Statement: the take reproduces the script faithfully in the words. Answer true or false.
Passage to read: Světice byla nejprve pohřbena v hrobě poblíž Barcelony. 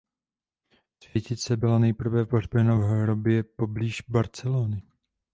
true